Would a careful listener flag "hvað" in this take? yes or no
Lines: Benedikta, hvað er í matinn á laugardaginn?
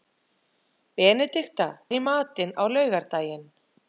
yes